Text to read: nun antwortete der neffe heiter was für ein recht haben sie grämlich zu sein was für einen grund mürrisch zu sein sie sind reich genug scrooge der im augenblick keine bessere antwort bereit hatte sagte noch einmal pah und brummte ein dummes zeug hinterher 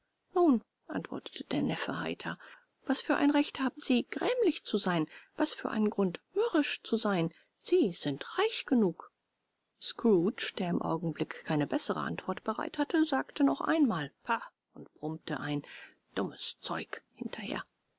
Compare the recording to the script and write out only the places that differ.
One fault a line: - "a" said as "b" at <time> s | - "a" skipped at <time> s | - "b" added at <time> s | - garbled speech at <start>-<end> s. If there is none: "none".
none